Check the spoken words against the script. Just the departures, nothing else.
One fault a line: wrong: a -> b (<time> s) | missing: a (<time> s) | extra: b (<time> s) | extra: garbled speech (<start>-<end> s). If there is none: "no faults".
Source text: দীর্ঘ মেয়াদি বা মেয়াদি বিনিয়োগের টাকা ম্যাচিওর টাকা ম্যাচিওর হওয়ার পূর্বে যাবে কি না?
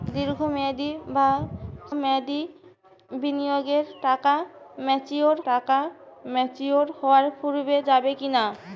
no faults